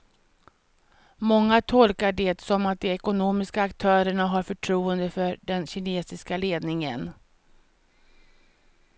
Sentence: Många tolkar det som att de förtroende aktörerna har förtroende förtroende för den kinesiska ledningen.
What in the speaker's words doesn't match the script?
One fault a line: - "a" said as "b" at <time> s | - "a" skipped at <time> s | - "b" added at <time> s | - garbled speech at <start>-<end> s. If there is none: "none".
- "förtroende" said as "ekonomiska" at 2.9 s
- "förtroende" skipped at 5.1 s